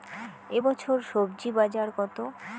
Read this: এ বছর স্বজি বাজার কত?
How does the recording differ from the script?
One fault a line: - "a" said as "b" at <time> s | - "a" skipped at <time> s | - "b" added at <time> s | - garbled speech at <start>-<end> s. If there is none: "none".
none